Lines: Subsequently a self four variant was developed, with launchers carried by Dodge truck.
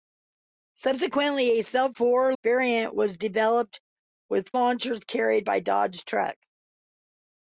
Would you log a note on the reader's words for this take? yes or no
no